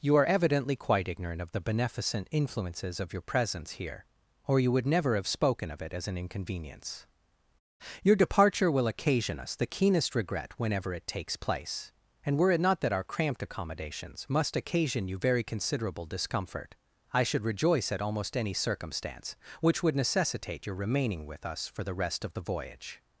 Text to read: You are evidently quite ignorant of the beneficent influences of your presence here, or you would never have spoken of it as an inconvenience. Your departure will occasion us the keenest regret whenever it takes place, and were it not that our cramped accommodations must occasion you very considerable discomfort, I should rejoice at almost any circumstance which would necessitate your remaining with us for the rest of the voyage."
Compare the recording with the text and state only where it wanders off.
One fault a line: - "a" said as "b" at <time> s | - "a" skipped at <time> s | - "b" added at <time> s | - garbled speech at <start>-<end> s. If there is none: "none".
none